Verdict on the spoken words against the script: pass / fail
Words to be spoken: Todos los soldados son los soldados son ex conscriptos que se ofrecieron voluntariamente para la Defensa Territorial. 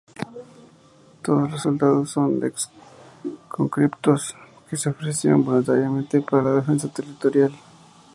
fail